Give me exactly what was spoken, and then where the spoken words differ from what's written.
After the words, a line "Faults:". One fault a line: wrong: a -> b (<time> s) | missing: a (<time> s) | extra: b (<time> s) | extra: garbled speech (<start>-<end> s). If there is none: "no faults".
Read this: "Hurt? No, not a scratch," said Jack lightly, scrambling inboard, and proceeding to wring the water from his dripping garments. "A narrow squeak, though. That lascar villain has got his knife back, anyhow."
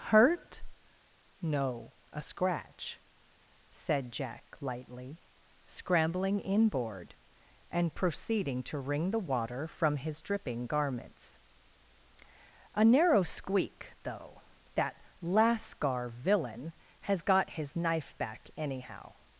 "Hurt? No, a scratch," said Jack lightly, scrambling inboard, and proceeding to wring the water from his dripping garments. "A narrow squeak, though. That lascar villain has got his knife back, anyhow."
Faults:
missing: not (1.9 s)